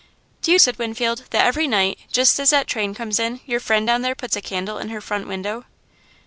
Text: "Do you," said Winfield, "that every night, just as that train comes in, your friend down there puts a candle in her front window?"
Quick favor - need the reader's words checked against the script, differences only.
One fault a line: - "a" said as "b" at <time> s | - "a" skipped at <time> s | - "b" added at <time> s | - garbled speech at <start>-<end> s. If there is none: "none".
none